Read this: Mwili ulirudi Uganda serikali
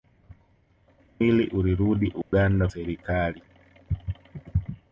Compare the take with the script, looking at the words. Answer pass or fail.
pass